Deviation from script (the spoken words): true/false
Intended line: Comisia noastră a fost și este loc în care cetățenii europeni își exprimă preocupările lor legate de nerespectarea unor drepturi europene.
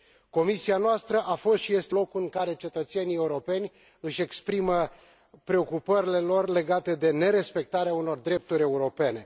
false